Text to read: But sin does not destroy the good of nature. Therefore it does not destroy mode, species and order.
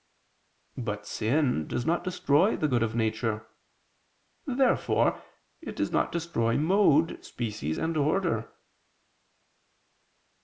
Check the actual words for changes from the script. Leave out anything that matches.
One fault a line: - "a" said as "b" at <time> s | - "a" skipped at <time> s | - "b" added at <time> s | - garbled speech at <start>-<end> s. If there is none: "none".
none